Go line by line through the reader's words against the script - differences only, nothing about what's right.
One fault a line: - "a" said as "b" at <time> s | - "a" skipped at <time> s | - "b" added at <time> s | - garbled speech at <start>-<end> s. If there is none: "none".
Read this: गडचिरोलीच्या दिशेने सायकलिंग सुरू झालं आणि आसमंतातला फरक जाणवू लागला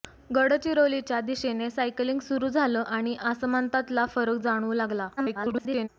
- garbled speech at 5.2-5.9 s